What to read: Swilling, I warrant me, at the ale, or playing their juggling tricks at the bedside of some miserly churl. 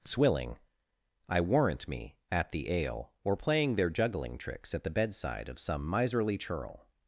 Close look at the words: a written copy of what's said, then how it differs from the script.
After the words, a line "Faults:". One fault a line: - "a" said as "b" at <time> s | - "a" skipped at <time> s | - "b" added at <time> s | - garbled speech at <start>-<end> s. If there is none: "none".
Swilling, I warrant me, at the ale, or playing their juggling tricks at the bedside of some miserly churl.
Faults:
none